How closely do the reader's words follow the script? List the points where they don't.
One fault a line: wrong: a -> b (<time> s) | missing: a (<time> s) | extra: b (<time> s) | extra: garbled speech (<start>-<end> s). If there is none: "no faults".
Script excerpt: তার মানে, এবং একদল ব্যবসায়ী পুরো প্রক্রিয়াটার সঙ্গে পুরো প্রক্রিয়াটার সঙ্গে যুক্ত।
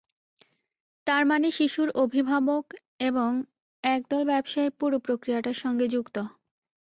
extra: শিশুর অভিভাবক (1.5 s)
missing: পুরো প্রক্রিয়াটার সঙ্গে (5.8 s)